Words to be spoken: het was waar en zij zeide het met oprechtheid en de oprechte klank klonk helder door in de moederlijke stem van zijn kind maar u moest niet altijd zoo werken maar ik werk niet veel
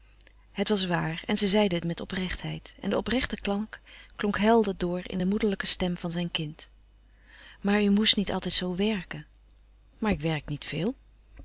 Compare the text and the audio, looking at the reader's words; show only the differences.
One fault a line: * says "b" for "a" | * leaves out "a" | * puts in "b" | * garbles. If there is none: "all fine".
all fine